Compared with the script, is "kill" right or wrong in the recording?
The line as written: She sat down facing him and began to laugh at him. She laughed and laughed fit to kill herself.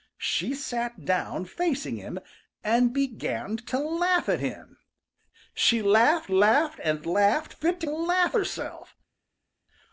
wrong